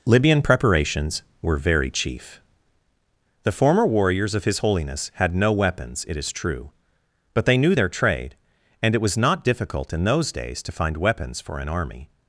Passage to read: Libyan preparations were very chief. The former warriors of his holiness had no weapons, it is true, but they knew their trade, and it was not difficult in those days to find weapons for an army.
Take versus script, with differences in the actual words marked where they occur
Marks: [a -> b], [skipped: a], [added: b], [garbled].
Libyan preparations were very chief. The former warriors of his holiness had no weapons, it is true, but they knew their trade, and it was not difficult in those days to find weapons for an army.